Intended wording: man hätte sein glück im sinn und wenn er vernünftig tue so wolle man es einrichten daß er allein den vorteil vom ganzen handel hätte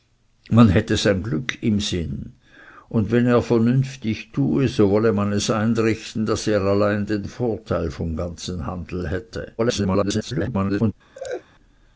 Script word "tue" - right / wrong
right